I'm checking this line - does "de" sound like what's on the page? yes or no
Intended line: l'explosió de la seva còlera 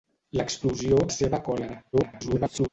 no